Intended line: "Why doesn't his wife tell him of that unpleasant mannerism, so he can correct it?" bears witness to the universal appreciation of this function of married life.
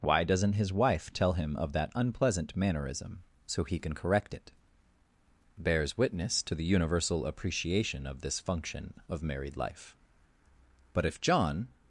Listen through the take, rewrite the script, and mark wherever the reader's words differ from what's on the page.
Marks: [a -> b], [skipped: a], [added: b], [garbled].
"Why doesn't his wife tell him of that unpleasant mannerism, so he can correct it?" bears witness to the universal appreciation of this function of married life. [added: But if John]